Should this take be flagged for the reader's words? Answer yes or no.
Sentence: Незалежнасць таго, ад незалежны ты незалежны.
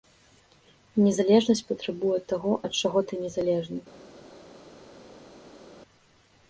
yes